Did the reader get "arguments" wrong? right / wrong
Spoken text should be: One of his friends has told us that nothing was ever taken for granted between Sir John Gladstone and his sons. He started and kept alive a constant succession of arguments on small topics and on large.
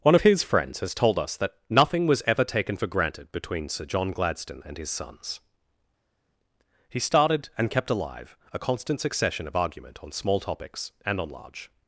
wrong